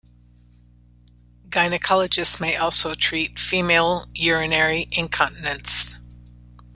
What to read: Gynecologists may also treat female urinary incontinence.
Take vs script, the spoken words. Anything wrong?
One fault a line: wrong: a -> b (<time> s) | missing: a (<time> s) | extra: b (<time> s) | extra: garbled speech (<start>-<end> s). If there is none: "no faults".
no faults